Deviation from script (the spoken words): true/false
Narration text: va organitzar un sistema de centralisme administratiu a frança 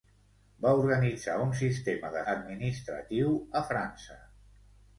true